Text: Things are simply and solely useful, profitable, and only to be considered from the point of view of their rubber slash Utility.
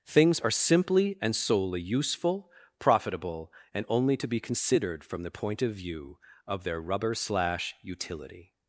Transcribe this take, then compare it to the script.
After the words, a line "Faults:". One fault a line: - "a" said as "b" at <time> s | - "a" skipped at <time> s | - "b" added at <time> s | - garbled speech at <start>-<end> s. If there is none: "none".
Things are simply and solely useful, profitable, and only to be considered from the point of view of their rubber slash Utility.
Faults:
none